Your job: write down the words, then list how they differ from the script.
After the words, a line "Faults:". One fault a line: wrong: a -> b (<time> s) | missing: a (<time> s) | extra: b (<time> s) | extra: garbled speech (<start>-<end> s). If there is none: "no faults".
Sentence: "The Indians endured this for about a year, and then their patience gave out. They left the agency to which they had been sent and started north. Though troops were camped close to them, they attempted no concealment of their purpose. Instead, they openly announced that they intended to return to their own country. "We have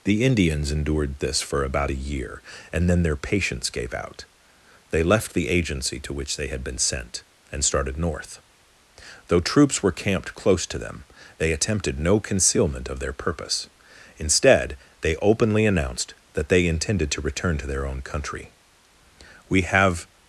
"The Indians endured this for about a year, and then their patience gave out. They left the agency to which they had been sent and started north. Though troops were camped close to them, they attempted no concealment of their purpose. Instead, they openly announced that they intended to return to their own country. "We have
Faults:
no faults